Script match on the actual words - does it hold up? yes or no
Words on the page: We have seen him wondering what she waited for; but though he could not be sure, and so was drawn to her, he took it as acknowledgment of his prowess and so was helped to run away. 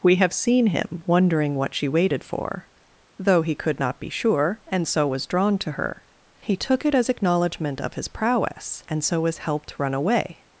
no